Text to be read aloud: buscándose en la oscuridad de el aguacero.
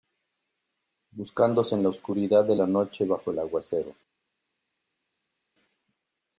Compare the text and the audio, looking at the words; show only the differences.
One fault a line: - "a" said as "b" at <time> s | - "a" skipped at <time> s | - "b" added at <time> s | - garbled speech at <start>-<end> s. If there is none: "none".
- "la noche bajo" added at 2.5 s